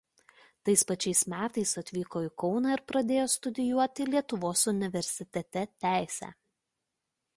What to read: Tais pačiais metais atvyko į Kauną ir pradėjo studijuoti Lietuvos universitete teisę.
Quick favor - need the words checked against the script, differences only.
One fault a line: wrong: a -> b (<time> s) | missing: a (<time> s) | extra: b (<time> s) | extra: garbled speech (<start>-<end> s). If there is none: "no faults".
no faults